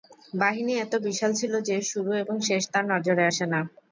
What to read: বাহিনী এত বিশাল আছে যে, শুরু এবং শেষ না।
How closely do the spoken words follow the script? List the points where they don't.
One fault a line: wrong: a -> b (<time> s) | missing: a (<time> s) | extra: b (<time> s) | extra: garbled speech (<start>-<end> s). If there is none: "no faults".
wrong: আছে -> ছিল (1.4 s)
extra: তার নজরে আসে (2.7 s)